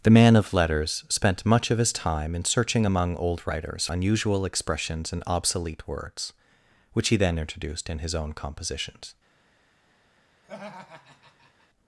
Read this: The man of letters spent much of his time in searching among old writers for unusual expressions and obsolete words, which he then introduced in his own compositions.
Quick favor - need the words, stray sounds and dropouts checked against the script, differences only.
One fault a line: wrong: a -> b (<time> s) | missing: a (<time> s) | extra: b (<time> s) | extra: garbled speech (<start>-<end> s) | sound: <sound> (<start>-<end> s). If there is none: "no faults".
missing: for (3.9 s)
sound: laugh (10.4-11.7 s)